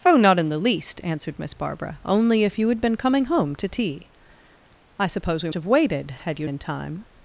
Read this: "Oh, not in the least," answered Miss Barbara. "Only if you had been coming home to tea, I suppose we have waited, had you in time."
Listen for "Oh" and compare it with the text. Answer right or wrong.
right